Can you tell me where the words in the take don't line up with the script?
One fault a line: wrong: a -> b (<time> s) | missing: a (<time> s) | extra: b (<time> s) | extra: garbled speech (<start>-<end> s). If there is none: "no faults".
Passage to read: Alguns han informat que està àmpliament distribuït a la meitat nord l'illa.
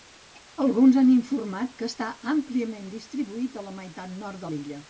no faults